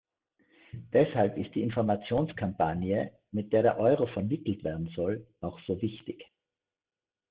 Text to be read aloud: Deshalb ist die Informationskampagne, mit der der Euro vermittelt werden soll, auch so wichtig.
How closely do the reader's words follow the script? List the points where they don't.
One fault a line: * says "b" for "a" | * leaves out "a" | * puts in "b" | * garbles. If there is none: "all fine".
all fine